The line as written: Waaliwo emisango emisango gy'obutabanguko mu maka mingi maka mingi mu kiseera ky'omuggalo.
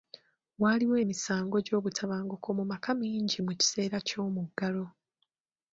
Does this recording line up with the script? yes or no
no